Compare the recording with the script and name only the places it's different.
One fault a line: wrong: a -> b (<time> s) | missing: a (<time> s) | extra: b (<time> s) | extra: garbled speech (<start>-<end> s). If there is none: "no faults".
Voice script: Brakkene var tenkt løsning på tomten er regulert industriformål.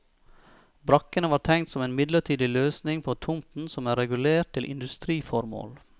extra: som en midlertidig (1.7 s)
extra: som (3.7 s)
extra: til (4.5 s)